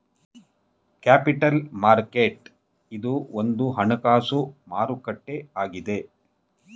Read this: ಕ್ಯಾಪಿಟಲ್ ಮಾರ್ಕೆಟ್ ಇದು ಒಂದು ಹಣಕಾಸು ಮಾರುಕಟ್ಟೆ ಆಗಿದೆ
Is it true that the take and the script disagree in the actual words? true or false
false